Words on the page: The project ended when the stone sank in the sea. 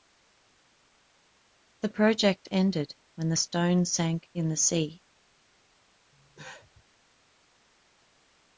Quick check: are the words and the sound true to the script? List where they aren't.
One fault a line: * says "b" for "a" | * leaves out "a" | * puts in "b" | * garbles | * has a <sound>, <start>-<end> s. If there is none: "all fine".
* has a cough, 6.1-6.8 s